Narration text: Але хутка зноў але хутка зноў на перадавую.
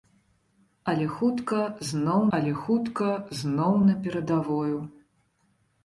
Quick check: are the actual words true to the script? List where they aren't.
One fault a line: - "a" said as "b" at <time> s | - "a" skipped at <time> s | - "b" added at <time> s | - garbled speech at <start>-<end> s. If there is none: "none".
none